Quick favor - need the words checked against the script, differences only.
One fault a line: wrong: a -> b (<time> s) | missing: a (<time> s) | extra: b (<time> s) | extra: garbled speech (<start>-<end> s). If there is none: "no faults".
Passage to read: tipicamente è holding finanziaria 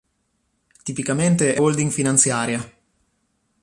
no faults